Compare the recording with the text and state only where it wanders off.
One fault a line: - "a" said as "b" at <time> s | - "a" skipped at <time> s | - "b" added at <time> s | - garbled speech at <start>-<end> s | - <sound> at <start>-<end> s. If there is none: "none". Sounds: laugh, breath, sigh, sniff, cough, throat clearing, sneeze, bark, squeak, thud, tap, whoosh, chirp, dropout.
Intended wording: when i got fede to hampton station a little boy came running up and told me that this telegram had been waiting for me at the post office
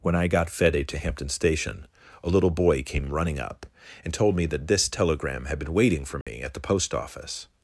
- dropout at 6.2-6.3 s